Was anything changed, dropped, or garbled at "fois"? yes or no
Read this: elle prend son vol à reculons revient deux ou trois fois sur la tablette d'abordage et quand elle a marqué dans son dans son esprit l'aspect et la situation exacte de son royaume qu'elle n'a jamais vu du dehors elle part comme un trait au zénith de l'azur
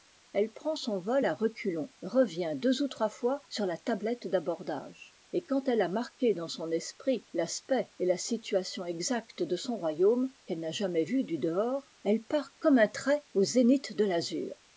no